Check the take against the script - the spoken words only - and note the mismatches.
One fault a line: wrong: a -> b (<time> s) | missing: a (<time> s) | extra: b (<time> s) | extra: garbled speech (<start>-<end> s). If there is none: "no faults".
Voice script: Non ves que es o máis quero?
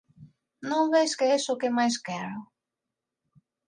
extra: que (1.6 s)